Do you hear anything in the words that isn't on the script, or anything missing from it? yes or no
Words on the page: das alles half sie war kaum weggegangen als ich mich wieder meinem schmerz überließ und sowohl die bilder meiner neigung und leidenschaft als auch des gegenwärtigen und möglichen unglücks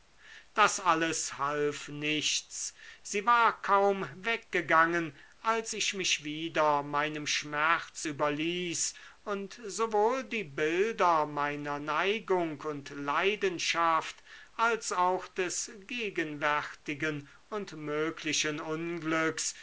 yes